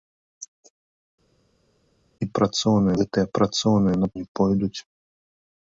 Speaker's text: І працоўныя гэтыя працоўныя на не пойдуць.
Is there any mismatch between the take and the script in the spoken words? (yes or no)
no